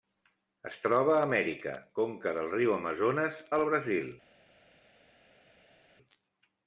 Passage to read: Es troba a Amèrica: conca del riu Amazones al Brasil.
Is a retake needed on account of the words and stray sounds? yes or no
no